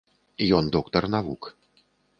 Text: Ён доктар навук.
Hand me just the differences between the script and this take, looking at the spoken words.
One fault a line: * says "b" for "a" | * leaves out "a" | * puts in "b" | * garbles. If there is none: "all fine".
all fine